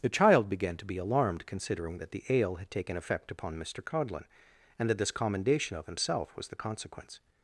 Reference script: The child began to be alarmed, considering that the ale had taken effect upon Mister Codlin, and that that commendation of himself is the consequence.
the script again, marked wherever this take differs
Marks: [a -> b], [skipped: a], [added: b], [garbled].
The child began to be alarmed, considering that the ale had taken effect upon Mister Codlin, and that [that -> this] commendation of himself [is -> was] the consequence.